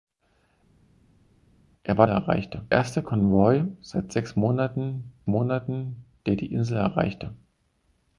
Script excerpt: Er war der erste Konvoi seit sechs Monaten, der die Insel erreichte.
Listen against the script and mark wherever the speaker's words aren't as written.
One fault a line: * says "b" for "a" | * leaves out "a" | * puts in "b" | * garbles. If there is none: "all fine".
* says "erreichte" for "der"
* puts in "Monaten"